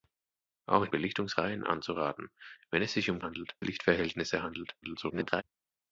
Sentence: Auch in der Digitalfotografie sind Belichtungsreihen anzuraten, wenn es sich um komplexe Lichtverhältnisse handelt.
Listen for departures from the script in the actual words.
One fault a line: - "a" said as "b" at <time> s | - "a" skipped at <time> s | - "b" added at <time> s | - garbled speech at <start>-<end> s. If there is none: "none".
- "der Digitalfotografie sind" skipped at 0.9 s
- "komplexe" said as "handelt" at 3.2 s
- garbled speech at 4.8-5.4 s